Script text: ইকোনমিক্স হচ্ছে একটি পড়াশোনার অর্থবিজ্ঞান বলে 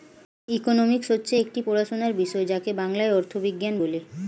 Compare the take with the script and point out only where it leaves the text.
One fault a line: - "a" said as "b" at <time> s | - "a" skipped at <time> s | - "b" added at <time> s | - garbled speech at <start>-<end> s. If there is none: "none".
- "বিষয় যাকে বাংলায়" added at 2.1 s